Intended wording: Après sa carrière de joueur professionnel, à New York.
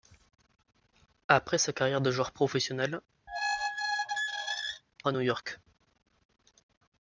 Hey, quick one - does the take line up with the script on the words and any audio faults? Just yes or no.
no